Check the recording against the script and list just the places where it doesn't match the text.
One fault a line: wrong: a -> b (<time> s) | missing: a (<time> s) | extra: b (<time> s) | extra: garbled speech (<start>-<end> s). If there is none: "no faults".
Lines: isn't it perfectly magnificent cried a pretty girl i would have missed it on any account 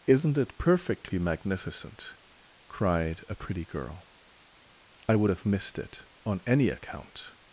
no faults